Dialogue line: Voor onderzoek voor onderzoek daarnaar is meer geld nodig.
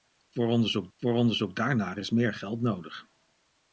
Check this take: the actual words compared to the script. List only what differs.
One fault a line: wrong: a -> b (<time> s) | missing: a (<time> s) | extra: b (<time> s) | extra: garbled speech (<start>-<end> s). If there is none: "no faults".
no faults